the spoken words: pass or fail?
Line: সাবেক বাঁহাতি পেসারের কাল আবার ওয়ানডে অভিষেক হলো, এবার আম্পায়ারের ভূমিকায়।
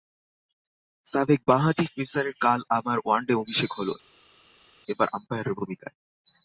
pass